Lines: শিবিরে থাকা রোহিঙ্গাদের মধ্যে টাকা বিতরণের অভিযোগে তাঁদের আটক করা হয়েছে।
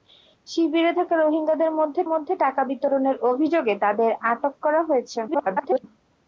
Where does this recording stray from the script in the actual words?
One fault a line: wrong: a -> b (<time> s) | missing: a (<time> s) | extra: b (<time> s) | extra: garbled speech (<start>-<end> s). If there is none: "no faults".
extra: মধ্যে (2.1 s)
extra: garbled speech (5.3-5.8 s)